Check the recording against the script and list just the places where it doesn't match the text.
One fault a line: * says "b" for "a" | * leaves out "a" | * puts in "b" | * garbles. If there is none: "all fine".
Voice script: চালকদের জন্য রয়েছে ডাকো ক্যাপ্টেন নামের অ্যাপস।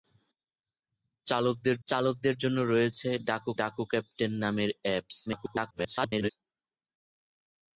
* puts in "চালকদের"
* puts in "ডাকো"
* garbles